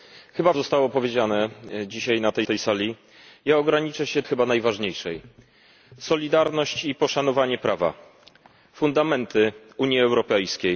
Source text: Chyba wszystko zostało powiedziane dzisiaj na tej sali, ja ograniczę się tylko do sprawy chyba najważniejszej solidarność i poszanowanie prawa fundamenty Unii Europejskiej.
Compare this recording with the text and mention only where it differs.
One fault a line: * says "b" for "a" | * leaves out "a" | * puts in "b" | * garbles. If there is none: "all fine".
* leaves out "wszystko"
* puts in "tej"
* leaves out "tylko do sprawy"